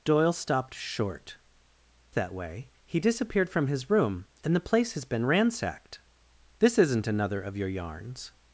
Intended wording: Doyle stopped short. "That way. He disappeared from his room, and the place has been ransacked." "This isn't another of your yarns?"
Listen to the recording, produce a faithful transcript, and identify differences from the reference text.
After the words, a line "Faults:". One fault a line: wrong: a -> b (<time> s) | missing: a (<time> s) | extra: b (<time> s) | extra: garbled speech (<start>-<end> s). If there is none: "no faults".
Doyle stopped short. "That way. He disappeared from his room, and the place has been ransacked." "This isn't another of your yarns?"
Faults:
no faults